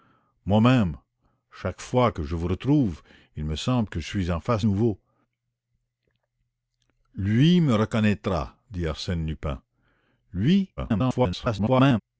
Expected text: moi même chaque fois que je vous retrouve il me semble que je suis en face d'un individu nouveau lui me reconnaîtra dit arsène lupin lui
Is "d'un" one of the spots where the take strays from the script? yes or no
yes